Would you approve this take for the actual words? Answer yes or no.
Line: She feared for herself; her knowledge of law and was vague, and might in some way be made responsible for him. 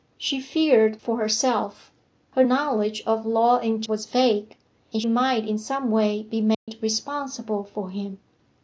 yes